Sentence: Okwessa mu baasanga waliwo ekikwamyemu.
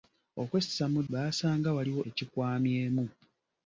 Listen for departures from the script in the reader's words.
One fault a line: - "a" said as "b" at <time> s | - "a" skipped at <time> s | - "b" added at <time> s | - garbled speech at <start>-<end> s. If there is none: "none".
none